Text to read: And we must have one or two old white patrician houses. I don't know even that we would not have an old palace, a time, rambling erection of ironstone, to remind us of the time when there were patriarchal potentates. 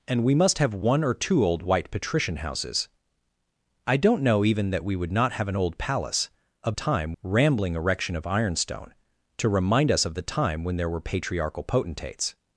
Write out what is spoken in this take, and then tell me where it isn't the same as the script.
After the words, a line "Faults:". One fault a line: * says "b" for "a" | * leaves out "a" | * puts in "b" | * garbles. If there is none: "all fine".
And we must have one or two old white patrician houses. I don't know even that we would not have an old palace, a time, rambling erection of ironstone, to remind us of the time when there were patriarchal potentates.
Faults:
all fine